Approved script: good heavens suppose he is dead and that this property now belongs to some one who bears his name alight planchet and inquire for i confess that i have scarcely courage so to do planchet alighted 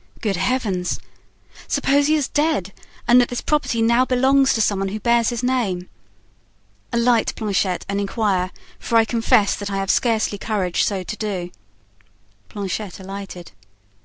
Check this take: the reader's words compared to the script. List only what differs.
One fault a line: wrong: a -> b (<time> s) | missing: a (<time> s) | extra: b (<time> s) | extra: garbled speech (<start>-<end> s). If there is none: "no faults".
no faults